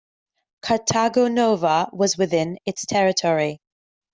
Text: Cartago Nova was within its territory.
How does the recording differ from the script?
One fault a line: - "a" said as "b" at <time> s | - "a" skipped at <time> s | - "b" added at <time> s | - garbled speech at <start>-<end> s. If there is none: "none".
none